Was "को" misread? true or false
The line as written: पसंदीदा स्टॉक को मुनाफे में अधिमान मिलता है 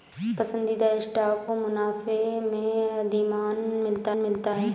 true